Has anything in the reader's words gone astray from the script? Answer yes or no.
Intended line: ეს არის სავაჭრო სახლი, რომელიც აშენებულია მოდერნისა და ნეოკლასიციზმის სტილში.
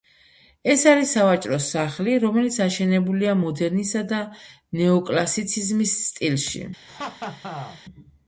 no